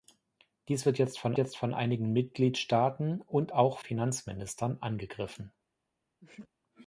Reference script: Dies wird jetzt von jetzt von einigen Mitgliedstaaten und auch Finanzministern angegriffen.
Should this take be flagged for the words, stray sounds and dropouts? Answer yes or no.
yes